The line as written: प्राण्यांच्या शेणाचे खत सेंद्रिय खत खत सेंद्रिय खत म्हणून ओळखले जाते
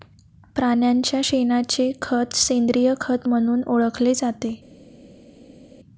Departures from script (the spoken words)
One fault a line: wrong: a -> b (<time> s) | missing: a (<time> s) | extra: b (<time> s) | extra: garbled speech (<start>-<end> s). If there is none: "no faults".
missing: खत सेंद्रिय खत (3.3 s)